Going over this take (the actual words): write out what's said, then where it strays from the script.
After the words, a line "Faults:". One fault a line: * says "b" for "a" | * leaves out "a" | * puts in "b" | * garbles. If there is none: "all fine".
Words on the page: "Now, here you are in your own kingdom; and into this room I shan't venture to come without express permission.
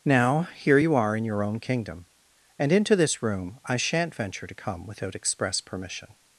"Now, here you are in your own kingdom; and into this room I shan't venture to come without express permission.
Faults:
all fine